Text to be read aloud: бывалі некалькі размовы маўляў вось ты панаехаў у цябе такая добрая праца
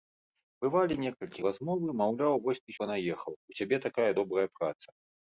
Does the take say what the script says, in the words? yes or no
yes